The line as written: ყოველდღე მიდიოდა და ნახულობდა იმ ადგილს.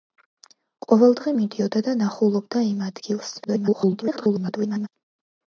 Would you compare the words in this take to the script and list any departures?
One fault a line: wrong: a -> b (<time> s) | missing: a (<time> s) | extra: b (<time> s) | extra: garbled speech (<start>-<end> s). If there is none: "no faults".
extra: garbled speech (3.4-4.9 s)